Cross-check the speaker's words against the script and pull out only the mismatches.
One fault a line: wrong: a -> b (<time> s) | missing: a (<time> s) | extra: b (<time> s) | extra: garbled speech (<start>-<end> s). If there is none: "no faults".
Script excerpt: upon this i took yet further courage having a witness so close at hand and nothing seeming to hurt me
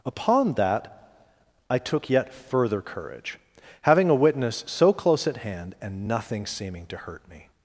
wrong: this -> that (0.5 s)